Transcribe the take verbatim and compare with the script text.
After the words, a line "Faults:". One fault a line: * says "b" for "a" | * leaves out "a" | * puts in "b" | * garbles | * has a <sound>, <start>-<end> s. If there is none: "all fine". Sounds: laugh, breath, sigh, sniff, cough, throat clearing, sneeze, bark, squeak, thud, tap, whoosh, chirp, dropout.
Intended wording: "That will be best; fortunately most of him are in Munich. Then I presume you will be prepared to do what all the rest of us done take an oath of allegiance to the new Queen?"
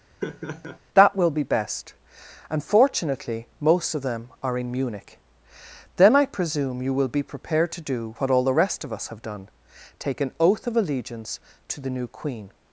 "That will be best; and fortunately most of them are in Munich. Then I presume you will be prepared to do what all the rest of us have done take an oath of allegiance to the new Queen?"
Faults:
* has a laugh, 0.2-0.8 s
* puts in "and"
* says "them" for "him"
* puts in "have"